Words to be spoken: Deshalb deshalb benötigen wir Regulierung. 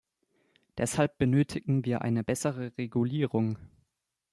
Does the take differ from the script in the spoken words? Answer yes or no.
yes